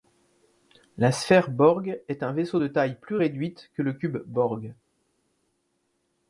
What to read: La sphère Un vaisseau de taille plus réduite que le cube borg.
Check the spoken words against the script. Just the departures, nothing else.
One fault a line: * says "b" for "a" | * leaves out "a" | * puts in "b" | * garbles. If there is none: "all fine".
* puts in "Borg est"